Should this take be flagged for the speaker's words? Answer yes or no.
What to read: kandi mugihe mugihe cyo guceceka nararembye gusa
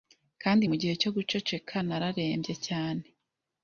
yes